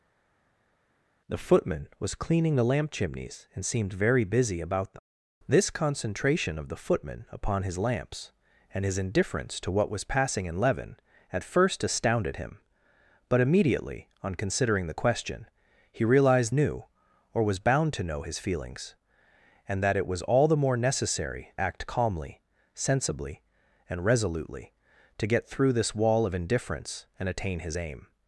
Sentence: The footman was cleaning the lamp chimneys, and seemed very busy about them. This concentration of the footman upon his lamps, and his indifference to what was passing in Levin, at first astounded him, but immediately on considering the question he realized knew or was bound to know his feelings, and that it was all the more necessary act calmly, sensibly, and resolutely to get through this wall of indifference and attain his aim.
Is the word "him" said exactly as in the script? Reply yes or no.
yes